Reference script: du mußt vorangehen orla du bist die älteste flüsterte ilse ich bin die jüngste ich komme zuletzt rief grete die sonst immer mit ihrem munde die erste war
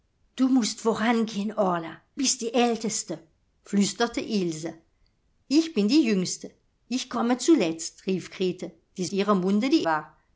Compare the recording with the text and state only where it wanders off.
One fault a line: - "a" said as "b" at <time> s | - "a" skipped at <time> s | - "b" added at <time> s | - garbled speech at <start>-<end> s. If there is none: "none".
- "du" skipped at 2.0 s
- "sonst immer mit" skipped at 9.1 s
- "erste" skipped at 9.8 s